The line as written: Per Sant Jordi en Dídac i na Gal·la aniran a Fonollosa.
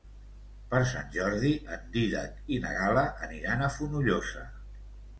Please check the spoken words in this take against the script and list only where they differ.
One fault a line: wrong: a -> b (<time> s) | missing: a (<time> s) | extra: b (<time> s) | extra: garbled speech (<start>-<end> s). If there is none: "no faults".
no faults